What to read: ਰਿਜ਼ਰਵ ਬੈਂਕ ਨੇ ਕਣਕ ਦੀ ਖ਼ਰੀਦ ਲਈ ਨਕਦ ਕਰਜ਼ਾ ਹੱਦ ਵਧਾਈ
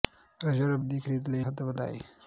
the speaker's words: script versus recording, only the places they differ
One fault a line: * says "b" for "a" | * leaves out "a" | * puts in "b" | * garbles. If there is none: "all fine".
* leaves out "ਬੈਂਕ ਨੇ ਕਣਕ"
* leaves out "ਨਕਦ ਕਰਜ਼ਾ"